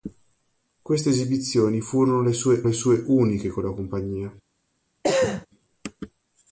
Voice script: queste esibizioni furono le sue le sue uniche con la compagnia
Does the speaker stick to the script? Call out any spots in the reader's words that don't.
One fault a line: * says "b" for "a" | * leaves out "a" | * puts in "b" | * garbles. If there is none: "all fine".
all fine